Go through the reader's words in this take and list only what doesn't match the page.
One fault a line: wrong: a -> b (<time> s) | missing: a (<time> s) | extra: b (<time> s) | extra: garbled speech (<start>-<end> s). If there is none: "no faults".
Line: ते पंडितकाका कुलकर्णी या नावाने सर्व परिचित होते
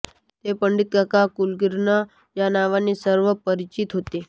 no faults